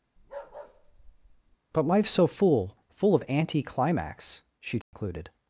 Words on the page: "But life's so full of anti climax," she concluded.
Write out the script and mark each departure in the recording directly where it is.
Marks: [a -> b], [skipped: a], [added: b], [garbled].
"But life's so full [added: full] of anti climax," she concluded.